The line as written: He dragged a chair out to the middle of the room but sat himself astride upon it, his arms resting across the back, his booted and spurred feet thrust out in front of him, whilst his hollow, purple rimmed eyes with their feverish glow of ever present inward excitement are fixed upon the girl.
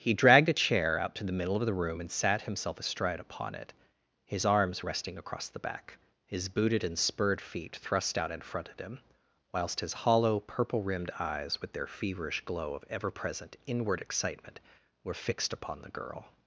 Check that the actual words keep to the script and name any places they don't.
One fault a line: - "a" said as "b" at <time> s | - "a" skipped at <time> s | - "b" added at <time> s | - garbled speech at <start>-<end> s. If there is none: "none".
- "but" said as "and" at 2.0 s
- "are" said as "were" at 15.0 s